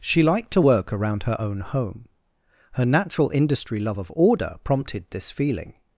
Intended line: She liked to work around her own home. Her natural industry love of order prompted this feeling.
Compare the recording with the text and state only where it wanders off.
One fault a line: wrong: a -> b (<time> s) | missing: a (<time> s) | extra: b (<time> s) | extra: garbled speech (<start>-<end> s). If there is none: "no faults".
no faults